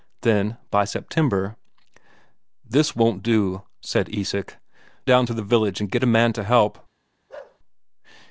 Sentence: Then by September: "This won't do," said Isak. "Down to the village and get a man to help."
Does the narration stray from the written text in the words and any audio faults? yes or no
yes